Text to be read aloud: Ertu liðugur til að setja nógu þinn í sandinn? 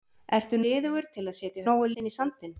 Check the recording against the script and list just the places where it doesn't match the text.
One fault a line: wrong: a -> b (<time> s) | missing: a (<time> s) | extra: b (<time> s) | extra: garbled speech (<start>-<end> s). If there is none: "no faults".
no faults